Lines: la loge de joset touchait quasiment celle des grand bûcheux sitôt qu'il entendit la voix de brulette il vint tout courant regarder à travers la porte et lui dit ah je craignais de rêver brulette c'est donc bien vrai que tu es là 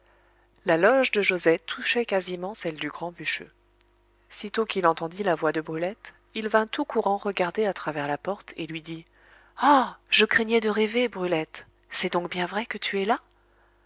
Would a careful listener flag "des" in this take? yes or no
yes